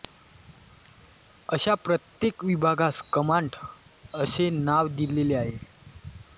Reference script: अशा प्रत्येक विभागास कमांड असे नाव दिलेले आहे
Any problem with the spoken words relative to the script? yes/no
no